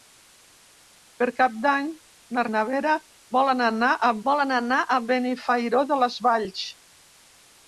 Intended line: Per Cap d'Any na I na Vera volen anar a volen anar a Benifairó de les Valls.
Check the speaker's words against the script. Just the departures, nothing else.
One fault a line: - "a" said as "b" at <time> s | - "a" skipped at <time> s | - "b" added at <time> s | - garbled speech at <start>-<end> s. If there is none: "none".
none